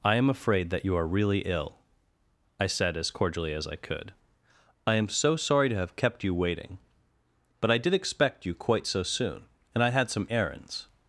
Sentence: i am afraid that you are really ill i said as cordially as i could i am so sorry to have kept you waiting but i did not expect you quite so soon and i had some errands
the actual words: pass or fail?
fail